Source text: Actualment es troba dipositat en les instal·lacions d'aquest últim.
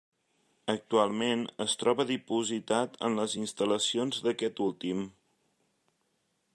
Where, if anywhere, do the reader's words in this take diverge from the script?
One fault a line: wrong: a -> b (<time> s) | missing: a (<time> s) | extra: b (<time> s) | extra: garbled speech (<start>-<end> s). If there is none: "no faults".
no faults